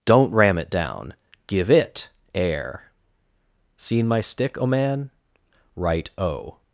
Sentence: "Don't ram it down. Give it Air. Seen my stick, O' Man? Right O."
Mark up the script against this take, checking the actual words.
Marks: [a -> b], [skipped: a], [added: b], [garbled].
"Don't ram it down. Give it Air. Seen my stick, O' Man? Right O."